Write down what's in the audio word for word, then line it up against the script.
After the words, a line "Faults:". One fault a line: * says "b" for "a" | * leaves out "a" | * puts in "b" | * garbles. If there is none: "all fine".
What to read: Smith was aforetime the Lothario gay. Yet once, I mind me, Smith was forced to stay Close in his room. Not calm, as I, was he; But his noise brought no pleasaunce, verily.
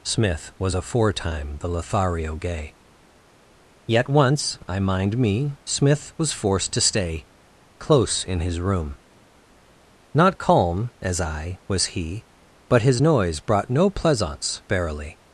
Smith was aforetime the Lothario gay. Yet once, I mind me, Smith was forced to stay Close in his room. Not calm, as I, was he; But his noise brought no pleasaunce, verily.
Faults:
all fine